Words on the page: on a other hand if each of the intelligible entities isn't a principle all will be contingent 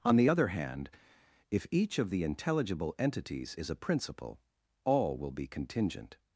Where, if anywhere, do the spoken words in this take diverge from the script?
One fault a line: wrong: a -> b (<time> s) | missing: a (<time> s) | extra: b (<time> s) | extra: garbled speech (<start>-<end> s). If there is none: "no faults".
wrong: a -> the (0.1 s)
wrong: isn't -> is (3.6 s)